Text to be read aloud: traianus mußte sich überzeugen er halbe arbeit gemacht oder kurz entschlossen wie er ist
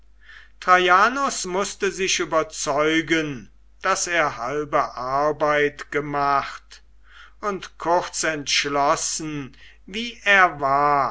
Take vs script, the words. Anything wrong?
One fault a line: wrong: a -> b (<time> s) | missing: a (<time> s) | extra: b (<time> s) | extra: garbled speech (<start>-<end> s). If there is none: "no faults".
extra: daß (3.8 s)
wrong: oder -> und (7.4 s)
wrong: ist -> war (10.6 s)